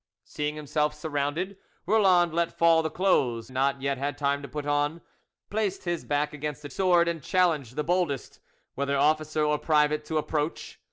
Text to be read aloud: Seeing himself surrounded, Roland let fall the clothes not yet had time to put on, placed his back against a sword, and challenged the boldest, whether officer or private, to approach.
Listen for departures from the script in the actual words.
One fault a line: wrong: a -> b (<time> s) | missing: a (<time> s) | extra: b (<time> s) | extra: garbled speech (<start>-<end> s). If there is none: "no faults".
no faults